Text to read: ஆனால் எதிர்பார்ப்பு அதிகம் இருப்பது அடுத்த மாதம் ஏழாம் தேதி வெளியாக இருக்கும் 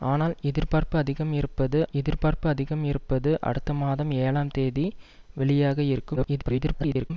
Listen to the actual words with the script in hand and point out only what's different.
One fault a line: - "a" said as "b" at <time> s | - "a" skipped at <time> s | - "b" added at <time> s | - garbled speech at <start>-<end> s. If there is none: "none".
- "எதிர்பார்ப்பு அதிகம் இருப்பது" added at 1.9 s
- garbled speech at 6.2-7.1 s